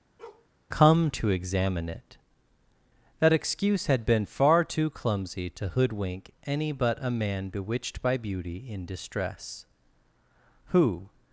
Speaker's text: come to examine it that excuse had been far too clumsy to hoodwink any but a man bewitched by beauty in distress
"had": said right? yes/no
yes